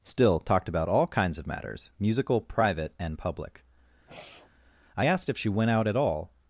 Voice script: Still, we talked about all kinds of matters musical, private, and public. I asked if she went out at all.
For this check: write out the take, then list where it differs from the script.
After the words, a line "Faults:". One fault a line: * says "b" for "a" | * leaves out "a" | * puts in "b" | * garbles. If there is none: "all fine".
Still, talked about all kinds of matters musical, private, and public. I asked if she went out at all.
Faults:
* leaves out "we"